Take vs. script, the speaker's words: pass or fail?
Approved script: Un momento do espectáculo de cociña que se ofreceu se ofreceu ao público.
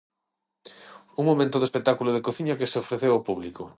fail